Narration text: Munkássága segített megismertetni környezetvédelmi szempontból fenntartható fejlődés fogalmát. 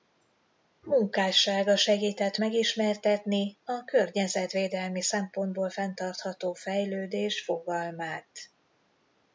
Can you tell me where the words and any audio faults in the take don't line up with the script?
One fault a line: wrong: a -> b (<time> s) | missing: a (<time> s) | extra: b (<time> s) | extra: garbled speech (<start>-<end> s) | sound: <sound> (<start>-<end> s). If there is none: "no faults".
extra: a (3.6 s)